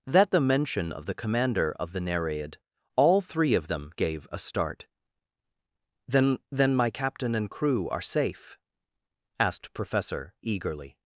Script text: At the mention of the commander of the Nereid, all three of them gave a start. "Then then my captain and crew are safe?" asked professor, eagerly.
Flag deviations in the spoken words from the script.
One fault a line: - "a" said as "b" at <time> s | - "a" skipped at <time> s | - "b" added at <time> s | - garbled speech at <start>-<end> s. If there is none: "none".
none